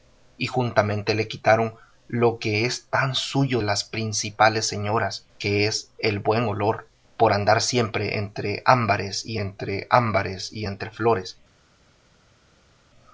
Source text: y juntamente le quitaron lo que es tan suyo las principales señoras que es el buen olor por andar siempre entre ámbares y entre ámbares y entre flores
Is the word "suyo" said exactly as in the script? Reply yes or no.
yes